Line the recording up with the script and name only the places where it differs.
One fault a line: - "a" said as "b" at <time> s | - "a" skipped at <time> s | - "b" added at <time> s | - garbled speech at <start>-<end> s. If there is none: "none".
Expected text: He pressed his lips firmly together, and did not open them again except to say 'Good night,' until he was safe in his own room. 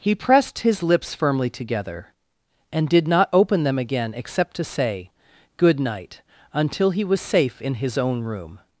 none